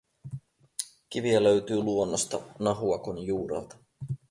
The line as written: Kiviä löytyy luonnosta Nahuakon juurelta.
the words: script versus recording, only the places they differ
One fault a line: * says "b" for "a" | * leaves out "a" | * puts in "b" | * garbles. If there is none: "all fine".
all fine